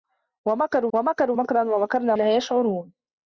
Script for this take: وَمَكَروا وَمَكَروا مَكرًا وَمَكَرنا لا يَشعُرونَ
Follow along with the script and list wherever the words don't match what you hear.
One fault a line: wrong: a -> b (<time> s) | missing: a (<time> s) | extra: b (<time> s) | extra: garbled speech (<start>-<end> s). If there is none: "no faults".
no faults